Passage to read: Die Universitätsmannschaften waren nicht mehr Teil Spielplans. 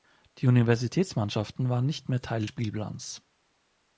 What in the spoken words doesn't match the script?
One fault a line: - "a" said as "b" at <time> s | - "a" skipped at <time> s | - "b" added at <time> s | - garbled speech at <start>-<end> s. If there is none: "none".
none